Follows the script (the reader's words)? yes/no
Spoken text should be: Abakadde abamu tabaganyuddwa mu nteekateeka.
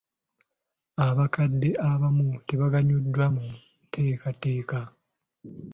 yes